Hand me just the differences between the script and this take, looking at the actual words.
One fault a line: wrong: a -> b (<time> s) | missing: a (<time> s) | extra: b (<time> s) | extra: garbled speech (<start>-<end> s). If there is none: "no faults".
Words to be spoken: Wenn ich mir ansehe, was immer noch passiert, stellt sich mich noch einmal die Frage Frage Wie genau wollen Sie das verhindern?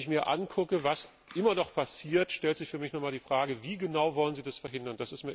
extra: für (2.7 s)
missing: Frage (3.6 s)